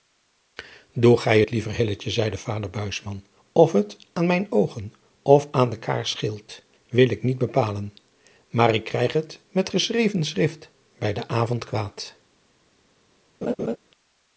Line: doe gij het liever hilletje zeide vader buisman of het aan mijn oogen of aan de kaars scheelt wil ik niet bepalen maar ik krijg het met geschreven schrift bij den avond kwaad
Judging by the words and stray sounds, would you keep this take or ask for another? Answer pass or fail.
fail